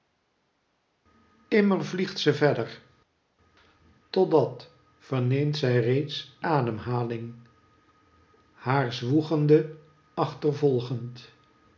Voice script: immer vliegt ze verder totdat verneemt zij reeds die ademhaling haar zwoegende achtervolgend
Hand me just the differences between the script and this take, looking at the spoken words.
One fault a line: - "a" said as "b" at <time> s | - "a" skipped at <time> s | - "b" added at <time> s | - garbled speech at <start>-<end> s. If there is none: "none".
- "die" skipped at 6.4 s